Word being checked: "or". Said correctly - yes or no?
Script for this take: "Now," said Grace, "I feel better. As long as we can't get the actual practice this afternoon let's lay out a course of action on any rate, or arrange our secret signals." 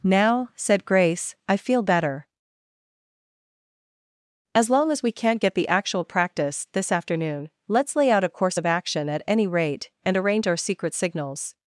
no